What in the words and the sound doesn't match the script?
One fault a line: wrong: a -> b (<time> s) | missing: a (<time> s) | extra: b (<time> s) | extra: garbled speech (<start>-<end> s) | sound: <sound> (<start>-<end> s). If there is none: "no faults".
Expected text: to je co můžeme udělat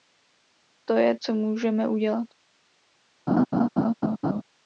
sound: laugh (3.3-4.4 s)